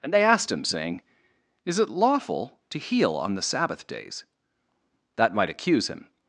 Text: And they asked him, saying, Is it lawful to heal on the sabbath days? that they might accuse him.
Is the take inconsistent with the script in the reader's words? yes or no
yes